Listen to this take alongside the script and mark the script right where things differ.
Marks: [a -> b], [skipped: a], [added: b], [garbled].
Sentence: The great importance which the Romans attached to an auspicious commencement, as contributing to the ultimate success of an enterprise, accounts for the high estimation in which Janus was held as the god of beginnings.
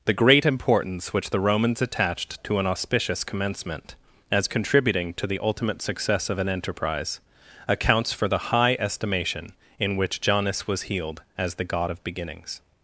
The great importance which the Romans attached to an auspicious commencement, as contributing to the ultimate success of an enterprise, accounts for the high estimation in which Janus was [held -> healed] as the god of beginnings.